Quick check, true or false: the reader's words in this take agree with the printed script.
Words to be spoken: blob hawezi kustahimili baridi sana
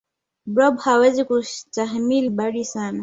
true